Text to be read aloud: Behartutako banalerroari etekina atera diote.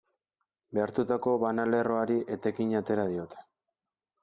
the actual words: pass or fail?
pass